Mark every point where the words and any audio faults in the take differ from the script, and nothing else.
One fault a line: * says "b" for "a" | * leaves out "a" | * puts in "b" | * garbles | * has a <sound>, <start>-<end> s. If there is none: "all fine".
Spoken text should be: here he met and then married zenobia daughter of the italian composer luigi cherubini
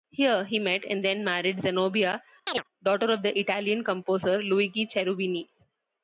* has a chirp, 2.5-2.6 s